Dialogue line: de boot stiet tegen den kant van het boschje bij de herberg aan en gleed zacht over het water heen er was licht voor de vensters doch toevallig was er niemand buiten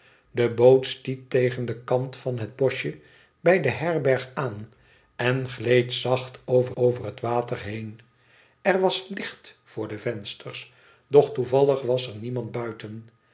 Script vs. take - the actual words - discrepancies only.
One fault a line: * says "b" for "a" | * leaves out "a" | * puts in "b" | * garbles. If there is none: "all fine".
* puts in "over"